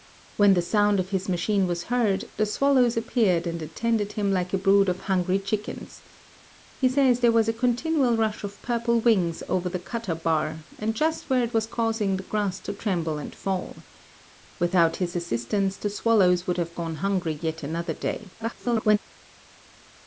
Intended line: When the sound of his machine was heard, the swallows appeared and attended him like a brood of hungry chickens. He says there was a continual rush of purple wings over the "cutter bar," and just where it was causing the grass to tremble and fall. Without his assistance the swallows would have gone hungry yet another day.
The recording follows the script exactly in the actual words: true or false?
false